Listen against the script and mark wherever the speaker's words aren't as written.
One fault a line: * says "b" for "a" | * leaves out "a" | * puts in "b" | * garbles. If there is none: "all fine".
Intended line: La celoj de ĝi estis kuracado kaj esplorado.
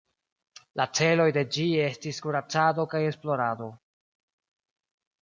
all fine